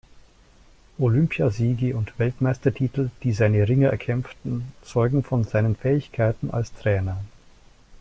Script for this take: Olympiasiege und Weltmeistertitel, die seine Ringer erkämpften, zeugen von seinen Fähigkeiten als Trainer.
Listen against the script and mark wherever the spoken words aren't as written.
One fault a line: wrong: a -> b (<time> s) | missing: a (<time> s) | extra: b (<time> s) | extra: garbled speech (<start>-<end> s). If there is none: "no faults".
no faults